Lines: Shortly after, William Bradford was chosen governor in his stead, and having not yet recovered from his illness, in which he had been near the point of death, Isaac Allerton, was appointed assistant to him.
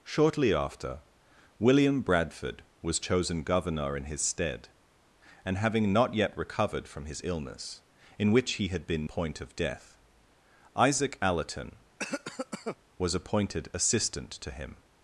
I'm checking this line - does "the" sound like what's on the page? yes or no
no